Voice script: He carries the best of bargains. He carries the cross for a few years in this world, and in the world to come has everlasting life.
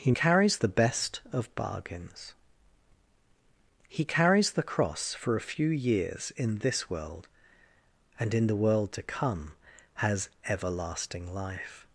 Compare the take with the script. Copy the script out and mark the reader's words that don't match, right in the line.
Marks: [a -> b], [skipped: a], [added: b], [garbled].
He carries the best of bargains. He carries the cross for a few years in this world, and in the world to come has everlasting life.